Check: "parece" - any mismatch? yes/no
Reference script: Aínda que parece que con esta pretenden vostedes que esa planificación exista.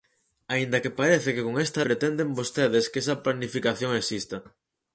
no